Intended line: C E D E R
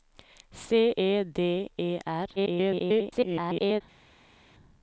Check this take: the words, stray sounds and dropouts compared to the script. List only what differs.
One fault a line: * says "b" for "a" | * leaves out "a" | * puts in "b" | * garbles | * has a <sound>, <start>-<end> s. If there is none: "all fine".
* garbles